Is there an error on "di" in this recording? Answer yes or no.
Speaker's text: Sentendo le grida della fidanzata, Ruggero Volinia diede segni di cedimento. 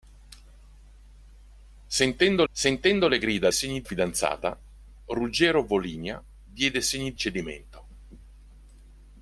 yes